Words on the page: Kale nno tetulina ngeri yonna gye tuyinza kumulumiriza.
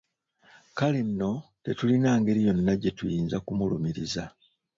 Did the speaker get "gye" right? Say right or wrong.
right